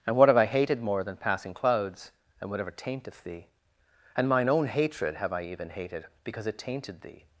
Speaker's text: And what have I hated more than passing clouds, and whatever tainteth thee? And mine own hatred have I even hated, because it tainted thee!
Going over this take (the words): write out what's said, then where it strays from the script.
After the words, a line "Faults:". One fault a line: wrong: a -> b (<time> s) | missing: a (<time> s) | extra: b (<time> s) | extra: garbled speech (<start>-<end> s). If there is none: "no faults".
And what have I hated more than passing clouds, and whatever tainteth thee? And mine own hatred have I even hated, because it tainted thee!
Faults:
no faults